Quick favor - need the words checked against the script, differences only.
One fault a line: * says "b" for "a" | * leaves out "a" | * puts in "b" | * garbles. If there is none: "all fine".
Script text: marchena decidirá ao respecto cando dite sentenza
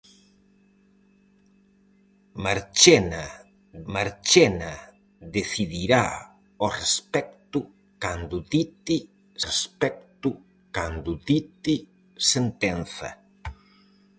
* puts in "marchena"
* puts in "respecto cando dite"